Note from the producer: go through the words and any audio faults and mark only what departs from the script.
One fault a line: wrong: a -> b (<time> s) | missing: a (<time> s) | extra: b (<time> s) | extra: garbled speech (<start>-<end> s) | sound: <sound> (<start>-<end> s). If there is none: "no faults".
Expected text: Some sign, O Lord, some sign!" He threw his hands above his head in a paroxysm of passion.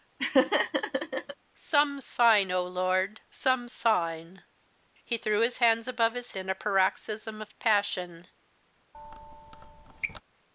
sound: laugh (0.2-1.3 s)
missing: head (6.3 s)
sound: squeak (8.9-10.2 s)